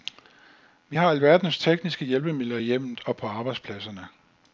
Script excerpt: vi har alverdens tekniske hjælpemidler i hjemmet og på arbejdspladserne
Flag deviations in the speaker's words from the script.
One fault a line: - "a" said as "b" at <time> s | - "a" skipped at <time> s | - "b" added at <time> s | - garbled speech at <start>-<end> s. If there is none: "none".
none